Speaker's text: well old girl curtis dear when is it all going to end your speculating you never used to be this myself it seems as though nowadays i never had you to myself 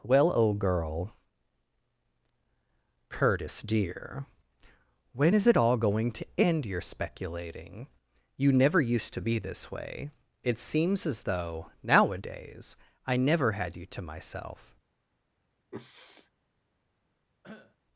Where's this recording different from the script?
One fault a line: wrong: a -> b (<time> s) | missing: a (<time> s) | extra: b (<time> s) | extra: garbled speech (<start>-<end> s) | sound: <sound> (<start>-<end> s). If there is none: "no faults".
wrong: myself -> way (9.7 s)
sound: sniff (15.7-16.3 s)
sound: cough (17.4-17.8 s)